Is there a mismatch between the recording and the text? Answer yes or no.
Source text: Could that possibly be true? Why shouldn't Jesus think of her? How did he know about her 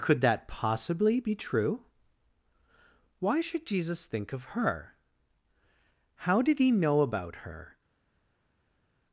yes